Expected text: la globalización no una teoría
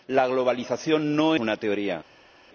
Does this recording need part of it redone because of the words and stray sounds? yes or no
no